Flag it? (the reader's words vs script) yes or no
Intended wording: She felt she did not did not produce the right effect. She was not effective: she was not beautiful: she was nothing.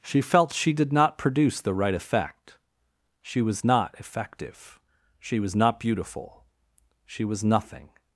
yes